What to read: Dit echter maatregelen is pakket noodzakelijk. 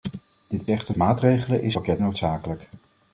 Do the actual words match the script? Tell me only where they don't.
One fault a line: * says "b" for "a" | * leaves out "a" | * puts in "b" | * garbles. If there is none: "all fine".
all fine